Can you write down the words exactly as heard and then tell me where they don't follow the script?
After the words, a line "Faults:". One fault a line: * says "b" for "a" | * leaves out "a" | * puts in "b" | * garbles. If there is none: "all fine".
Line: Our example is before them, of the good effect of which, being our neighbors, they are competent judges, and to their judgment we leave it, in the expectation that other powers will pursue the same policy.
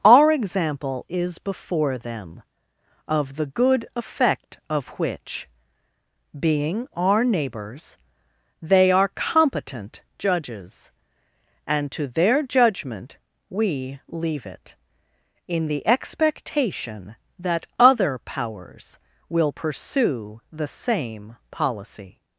Our example is before them, of the good effect of which, being our neighbors, they are competent judges, and to their judgment we leave it, in the expectation that other powers will pursue the same policy.
Faults:
all fine